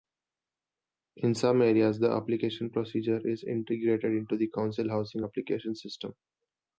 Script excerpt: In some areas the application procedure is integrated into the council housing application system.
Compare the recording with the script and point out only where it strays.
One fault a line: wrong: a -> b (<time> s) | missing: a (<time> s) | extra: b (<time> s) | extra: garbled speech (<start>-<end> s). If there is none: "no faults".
no faults